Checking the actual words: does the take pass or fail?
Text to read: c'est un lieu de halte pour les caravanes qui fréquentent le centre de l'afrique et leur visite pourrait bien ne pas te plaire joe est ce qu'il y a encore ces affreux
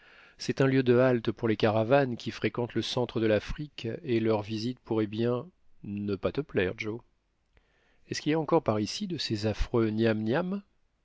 fail